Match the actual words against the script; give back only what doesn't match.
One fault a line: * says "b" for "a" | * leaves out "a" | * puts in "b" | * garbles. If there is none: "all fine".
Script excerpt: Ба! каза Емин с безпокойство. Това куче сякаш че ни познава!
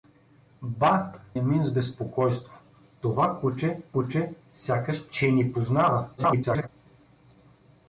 * leaves out "каза"
* puts in "куче"
* garbles